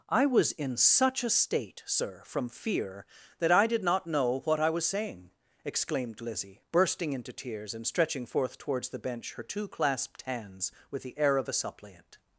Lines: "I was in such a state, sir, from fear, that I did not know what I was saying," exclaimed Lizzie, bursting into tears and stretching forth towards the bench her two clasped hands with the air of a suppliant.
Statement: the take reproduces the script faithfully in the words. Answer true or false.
true